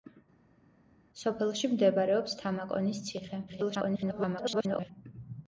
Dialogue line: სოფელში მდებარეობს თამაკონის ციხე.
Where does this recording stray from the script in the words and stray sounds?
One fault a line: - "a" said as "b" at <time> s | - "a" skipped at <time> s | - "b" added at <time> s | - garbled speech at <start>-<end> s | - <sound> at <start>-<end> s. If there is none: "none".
- garbled speech at 3.5-4.9 s